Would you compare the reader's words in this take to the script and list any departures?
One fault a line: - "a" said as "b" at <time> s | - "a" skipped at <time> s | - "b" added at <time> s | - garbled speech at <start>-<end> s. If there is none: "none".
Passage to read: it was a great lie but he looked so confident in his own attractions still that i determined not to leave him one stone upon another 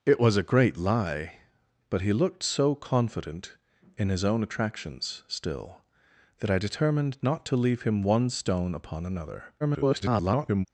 - garbled speech at 9.6-10.7 s